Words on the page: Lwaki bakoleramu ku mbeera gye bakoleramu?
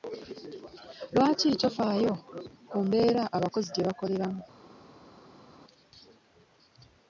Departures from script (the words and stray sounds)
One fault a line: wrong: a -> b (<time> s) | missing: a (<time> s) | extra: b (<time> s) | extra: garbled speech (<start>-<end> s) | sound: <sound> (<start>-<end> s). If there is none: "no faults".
wrong: bakoleramu -> tofaayo (1.6 s)
extra: abakozi (3.4 s)